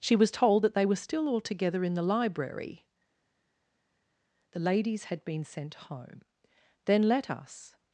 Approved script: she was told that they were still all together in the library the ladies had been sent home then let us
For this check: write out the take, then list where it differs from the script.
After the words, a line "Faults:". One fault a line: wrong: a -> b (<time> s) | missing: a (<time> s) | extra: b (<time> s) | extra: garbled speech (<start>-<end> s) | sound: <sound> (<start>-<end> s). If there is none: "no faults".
she was told that they were still all together in the library the ladies had been sent home then let us
Faults:
no faults